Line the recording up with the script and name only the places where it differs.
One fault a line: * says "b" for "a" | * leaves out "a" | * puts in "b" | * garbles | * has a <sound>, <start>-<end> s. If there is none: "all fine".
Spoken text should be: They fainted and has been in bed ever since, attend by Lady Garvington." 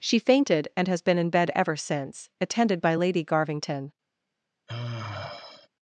* says "She" for "They"
* says "attended" for "attend"
* has a sigh, 4.7-5.7 s